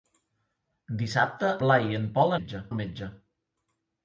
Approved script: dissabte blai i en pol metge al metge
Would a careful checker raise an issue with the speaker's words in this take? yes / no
no